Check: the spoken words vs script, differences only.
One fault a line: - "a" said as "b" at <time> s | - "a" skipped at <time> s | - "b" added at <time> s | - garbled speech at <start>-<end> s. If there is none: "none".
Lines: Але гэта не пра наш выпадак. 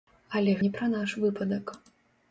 - "гэта" skipped at 0.6 s